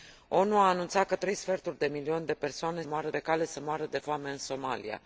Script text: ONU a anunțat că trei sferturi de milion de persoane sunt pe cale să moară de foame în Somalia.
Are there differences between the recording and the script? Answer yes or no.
yes